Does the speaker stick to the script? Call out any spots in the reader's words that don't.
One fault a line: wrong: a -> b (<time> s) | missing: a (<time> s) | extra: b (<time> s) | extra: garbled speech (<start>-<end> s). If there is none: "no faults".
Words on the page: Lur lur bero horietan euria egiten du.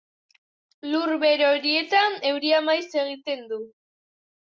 missing: lur (1.1 s)
extra: maiz (2.7 s)